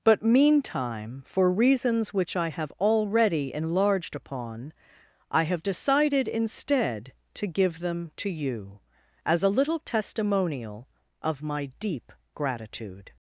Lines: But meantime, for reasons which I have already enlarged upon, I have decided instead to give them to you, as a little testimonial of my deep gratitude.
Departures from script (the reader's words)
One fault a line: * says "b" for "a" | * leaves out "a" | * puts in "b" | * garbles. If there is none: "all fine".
all fine